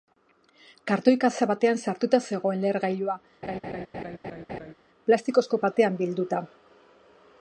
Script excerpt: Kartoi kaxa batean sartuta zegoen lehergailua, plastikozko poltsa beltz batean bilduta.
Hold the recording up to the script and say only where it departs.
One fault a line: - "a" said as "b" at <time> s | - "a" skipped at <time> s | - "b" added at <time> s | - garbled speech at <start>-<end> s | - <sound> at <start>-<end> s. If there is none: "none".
- laugh at 3.4-4.7 s
- "poltsa beltz" skipped at 5.6 s